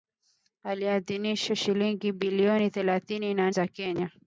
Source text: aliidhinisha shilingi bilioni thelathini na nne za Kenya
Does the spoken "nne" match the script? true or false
false